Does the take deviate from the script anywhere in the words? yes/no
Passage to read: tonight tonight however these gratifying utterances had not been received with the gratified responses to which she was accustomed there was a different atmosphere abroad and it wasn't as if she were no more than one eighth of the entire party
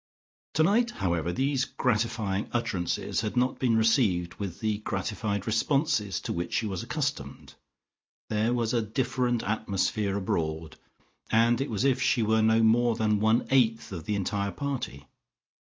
yes